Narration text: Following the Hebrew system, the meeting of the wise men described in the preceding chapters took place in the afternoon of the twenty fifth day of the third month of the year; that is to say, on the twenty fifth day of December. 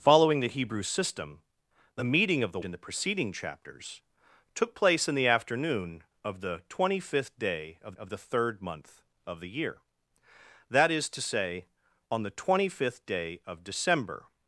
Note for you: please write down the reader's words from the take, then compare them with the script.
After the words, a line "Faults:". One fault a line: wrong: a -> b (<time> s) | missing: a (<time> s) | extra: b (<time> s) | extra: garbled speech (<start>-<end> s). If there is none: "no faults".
Following the Hebrew system, the meeting of the in the preceding chapters took place in the afternoon of the twenty fifth day of of the third month of the year; that is to say, on the twenty fifth day of December.
Faults:
missing: wise men described (2.6 s)
extra: of (8.0 s)